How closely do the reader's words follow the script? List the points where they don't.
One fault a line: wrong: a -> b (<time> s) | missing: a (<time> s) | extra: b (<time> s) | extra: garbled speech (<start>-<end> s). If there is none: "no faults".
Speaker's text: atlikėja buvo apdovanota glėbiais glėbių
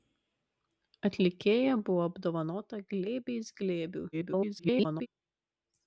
extra: garbled speech (4.1-5.1 s)